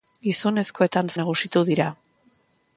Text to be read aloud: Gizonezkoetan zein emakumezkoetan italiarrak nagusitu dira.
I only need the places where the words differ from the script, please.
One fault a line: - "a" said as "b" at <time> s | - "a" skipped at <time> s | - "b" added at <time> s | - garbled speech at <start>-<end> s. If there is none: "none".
- "zein emakumezkoetan italiarrak" skipped at 1.1 s